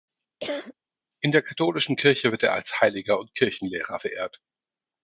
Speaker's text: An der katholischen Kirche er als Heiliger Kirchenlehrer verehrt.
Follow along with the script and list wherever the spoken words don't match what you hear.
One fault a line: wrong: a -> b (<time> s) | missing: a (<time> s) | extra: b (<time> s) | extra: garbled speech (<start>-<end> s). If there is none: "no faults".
wrong: An -> In (1.2 s)
extra: wird (2.3 s)
extra: und (3.2 s)